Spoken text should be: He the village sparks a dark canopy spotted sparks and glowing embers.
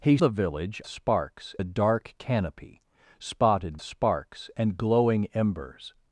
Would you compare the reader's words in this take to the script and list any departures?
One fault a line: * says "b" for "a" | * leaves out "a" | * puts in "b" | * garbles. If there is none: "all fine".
all fine